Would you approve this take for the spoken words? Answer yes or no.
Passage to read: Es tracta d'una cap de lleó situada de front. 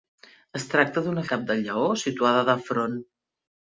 yes